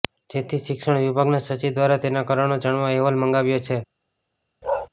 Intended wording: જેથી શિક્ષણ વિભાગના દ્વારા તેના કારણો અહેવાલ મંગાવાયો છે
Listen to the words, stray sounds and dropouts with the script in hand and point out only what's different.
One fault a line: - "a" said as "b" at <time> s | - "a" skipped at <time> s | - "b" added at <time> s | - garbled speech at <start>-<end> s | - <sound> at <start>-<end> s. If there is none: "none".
- "સચિવ" added at 1.4 s
- "જાણવા" added at 2.6 s
- bark at 4.6-4.9 s